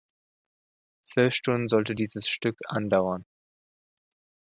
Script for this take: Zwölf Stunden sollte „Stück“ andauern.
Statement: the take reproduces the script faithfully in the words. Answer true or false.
false